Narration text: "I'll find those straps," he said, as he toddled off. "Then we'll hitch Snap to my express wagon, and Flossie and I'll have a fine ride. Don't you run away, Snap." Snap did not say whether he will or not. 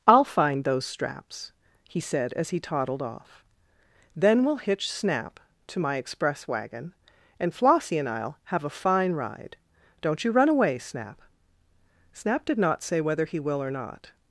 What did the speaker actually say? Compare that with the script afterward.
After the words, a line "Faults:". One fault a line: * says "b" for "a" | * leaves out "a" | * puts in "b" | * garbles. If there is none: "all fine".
"I'll find those straps," he said, as he toddled off. "Then we'll hitch Snap to my express wagon, and Flossie and I'll have a fine ride. Don't you run away, Snap." Snap did not say whether he will or not.
Faults:
all fine